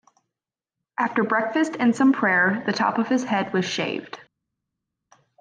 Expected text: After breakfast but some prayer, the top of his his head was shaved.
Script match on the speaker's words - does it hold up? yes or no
no